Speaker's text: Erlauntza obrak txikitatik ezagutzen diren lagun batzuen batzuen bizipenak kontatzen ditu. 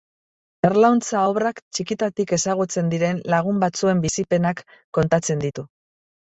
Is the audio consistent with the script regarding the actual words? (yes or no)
no